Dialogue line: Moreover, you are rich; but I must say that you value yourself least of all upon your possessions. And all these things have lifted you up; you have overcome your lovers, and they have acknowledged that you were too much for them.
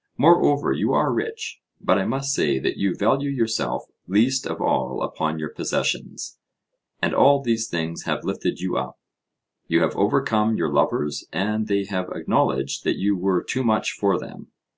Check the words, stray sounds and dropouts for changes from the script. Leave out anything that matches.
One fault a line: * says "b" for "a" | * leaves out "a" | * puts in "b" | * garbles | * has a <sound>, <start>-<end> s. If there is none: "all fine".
all fine